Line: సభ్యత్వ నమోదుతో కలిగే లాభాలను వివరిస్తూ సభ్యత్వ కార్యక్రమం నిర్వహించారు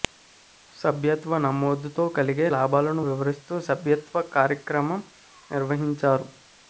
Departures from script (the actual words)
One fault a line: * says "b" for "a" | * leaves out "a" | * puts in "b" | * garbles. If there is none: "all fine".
all fine